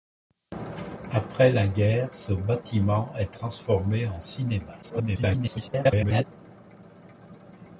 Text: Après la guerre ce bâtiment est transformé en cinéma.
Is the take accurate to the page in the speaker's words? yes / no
no